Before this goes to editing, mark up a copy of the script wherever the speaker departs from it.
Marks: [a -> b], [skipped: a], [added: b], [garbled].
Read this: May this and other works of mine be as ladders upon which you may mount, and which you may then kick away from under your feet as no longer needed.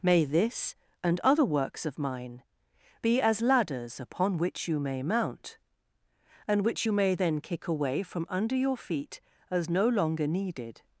May this and other works of mine be as ladders upon which you may mount, and which you may then kick away from under your feet as no longer needed.